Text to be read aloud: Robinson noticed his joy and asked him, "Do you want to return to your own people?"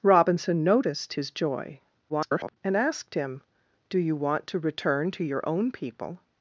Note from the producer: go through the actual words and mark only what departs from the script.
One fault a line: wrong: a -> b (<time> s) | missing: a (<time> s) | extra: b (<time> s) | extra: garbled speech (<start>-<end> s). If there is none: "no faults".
extra: garbled speech (2.1-2.6 s)